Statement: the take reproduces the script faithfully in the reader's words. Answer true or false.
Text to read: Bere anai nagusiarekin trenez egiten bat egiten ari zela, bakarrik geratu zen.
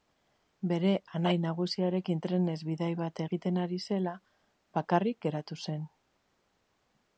false